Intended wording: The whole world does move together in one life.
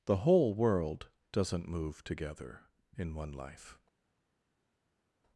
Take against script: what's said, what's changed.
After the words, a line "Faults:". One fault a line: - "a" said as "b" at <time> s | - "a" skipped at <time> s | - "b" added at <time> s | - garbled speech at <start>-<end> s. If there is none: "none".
The whole world doesn't move together in one life.
Faults:
- "does" said as "doesn't" at 1.3 s